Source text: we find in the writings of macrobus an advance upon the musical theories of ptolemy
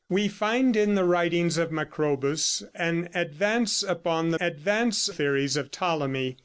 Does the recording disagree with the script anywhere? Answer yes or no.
yes